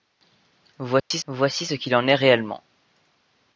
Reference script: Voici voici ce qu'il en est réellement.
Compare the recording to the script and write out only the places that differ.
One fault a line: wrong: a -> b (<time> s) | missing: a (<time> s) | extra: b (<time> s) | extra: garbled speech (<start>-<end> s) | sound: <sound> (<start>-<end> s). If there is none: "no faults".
sound: dropout (1.0-1.1 s)